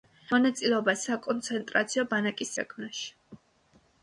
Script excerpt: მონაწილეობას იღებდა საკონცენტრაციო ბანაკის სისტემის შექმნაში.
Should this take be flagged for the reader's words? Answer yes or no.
yes